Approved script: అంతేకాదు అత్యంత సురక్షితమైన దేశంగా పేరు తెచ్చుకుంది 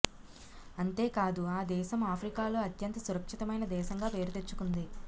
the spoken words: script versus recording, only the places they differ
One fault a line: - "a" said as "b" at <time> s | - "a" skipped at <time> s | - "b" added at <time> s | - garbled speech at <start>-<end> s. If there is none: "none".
- "ఆ దేశం ఆఫ్రికాలో" added at 1.5 s